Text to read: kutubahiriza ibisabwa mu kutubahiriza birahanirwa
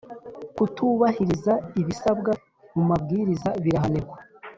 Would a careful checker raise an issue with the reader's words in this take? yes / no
yes